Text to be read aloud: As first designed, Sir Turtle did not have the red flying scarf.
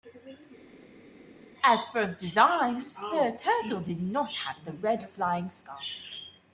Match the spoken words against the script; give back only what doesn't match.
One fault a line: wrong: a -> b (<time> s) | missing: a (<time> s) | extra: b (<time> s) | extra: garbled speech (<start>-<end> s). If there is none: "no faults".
no faults